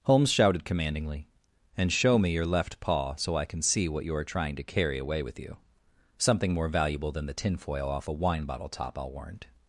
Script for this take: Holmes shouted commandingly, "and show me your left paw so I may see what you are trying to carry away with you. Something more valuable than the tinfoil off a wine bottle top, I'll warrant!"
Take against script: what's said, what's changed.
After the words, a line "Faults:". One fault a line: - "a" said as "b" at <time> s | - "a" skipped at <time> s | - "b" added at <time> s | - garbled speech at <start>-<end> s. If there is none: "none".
Holmes shouted commandingly, "and show me your left paw so I can see what you are trying to carry away with you. Something more valuable than the tinfoil off a wine bottle top, I'll warrant!"
Faults:
- "may" said as "can" at 3.5 s